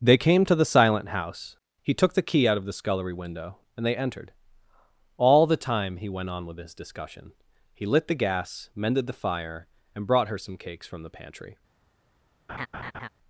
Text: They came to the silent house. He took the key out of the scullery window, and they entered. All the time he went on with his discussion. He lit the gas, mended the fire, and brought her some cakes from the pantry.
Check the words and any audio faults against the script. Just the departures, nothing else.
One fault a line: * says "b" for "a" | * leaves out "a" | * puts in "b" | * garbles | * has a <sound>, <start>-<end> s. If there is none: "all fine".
* has a laugh, 12.5-13.1 s